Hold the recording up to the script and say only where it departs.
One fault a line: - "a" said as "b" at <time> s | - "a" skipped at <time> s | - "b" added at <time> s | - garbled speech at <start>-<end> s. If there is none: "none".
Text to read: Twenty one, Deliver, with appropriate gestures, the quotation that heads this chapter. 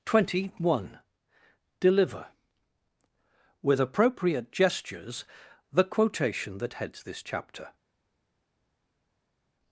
none